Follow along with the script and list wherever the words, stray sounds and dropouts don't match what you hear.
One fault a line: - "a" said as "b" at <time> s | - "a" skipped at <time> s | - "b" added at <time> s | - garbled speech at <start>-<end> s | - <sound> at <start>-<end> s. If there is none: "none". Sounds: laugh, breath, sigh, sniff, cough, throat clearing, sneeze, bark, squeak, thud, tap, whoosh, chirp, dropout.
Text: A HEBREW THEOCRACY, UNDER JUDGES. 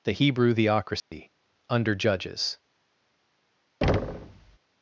- "A" said as "THE" at 0.0 s
- dropout at 1.0-1.1 s
- thud at 3.8-4.6 s